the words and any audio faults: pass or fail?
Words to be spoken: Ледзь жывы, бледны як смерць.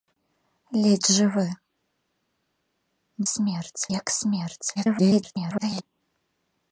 fail